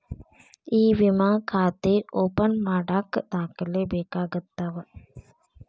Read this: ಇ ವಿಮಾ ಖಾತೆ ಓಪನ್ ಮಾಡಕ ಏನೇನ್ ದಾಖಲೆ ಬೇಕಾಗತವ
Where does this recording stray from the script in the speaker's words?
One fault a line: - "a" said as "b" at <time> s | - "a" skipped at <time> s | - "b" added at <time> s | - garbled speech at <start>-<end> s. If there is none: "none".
- "ಏನೇನ್" skipped at 3.1 s